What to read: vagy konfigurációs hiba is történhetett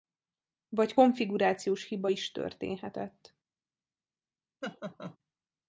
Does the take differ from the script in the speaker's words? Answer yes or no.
no